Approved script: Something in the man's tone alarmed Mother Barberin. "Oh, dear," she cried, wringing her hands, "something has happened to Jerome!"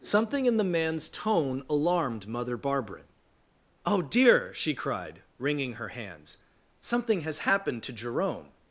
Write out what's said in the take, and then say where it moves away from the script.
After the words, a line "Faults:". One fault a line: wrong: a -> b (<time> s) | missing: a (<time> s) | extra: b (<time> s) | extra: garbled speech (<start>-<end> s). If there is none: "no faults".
Something in the man's tone alarmed Mother Barberin. "Oh, dear," she cried, wringing her hands, "something has happened to Jerome!"
Faults:
no faults